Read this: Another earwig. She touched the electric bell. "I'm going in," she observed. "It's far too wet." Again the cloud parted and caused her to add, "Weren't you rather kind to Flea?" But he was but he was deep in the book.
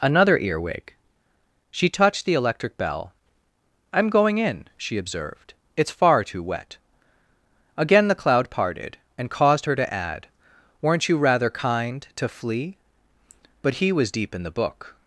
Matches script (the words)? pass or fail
fail